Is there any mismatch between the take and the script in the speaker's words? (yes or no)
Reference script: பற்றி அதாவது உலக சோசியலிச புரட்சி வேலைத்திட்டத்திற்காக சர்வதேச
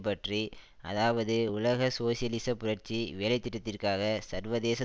no